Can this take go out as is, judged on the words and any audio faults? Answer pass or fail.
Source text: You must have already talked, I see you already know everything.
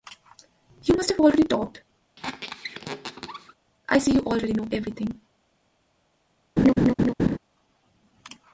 fail